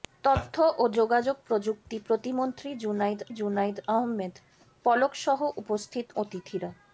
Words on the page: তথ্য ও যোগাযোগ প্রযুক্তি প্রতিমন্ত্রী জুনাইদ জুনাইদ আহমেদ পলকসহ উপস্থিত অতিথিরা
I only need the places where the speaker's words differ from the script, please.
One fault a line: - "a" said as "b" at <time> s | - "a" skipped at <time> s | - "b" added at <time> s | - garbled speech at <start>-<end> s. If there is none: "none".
none